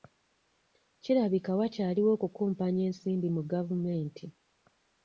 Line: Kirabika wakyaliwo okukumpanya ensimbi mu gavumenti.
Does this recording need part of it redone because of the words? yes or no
no